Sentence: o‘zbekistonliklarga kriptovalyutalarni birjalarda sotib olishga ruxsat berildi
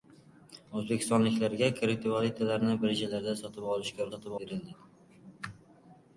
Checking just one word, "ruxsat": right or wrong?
wrong